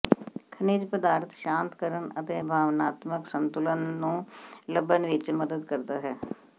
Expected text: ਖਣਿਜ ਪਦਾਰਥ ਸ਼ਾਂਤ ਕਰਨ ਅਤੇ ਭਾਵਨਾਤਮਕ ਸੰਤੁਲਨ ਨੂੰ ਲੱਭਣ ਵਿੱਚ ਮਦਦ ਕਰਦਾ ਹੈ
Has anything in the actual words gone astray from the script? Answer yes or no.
no